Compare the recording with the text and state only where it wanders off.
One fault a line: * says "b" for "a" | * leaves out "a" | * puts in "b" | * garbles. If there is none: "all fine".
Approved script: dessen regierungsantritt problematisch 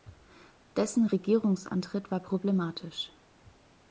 * puts in "war"